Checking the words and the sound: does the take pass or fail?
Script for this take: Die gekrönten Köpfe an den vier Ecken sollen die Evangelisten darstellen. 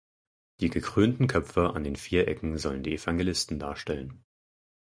pass